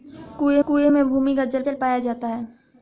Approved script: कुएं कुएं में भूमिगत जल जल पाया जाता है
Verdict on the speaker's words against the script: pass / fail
pass